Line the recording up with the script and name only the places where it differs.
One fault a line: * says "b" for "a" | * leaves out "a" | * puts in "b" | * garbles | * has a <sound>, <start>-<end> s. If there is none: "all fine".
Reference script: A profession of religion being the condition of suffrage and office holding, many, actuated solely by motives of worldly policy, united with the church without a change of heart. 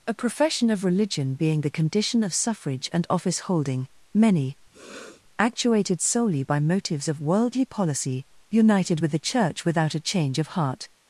* has a sniff, 4.7-5.2 s